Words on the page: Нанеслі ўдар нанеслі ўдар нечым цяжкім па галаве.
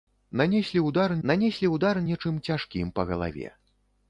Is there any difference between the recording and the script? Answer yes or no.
no